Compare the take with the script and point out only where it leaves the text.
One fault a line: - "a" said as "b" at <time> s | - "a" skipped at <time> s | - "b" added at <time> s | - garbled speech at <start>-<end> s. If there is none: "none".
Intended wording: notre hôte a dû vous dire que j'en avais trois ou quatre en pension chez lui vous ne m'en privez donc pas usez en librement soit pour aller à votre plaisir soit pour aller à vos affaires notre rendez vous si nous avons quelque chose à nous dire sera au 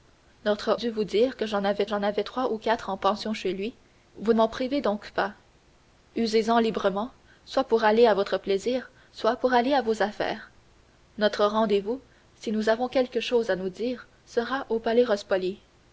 - "hôte a" skipped at 0.8 s
- "j'en avais" added at 1.8 s
- "ne" skipped at 4.3 s